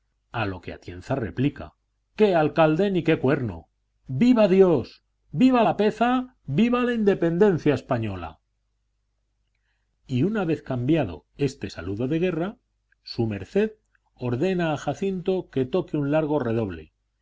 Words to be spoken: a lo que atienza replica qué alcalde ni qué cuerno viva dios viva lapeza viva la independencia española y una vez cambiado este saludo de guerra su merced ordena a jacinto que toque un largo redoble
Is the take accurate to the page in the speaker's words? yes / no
yes